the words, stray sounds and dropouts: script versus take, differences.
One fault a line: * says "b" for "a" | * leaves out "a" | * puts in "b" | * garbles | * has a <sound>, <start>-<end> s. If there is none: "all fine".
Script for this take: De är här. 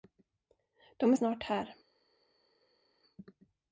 * puts in "snart"